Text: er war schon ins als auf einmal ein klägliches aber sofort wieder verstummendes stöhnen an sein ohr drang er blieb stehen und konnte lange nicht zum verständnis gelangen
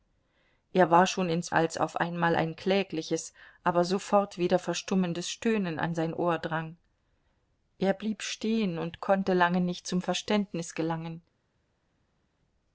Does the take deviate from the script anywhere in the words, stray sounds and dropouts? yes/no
no